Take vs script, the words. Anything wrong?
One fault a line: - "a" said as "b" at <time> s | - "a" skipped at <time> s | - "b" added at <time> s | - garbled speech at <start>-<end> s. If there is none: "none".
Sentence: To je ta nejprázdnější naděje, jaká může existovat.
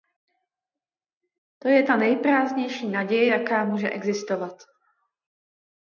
none